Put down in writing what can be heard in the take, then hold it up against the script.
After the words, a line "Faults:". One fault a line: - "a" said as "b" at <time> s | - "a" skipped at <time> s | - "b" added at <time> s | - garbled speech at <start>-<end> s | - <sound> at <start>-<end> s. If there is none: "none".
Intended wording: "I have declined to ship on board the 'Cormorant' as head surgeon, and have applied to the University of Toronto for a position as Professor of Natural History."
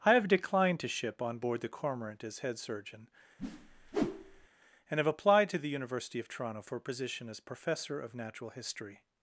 "I have declined to ship on board the 'Cormorant' as head surgeon, and have applied to the University of Toronto for a position as Professor of Natural History."
Faults:
- whoosh at 3.4-4.5 s